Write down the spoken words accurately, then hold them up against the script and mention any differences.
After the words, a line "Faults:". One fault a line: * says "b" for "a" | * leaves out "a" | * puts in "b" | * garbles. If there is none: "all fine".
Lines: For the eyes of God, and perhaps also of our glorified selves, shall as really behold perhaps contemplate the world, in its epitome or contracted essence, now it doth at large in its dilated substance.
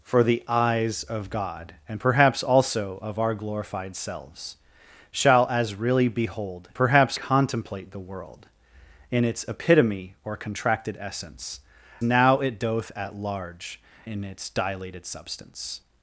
For the eyes of God, and perhaps also of our glorified selves, shall as really behold perhaps contemplate the world, in its epitome or contracted essence, now it doth at large in its dilated substance.
Faults:
all fine